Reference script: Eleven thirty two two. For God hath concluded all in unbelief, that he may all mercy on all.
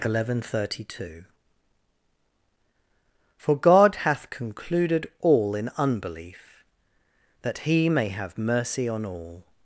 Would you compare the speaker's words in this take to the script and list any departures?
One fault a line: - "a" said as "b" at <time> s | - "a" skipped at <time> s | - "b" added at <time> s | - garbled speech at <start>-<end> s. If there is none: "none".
- "two" skipped at 1.3 s
- "all" said as "have" at 8.1 s